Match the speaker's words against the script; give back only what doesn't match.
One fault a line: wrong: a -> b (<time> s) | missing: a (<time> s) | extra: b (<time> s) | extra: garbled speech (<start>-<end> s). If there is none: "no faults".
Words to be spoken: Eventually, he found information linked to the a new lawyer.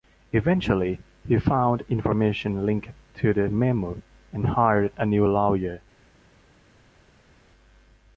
extra: memo and hired (3.5 s)